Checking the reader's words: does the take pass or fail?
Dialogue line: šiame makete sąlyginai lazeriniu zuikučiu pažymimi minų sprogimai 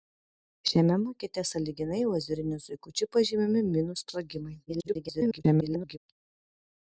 fail